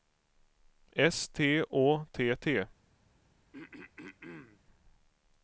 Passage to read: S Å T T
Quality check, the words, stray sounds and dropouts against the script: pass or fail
fail